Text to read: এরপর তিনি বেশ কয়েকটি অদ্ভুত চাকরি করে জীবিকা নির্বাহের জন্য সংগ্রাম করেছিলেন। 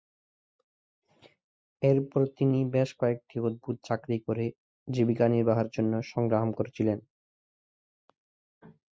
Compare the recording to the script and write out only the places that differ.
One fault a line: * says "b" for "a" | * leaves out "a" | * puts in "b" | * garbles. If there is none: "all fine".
all fine